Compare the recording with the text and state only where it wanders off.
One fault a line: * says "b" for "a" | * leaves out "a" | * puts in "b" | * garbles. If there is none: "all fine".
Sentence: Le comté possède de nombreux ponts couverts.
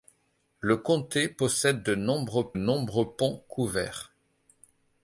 * puts in "nombreux"